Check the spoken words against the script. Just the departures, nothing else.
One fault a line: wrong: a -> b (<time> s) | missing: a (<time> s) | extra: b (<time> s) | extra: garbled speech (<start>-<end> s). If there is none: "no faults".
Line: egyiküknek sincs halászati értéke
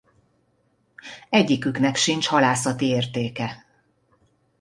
no faults